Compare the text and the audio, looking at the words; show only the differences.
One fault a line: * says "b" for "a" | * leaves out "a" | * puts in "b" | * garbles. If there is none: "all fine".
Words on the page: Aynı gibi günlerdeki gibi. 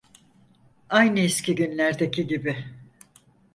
* says "eski" for "gibi"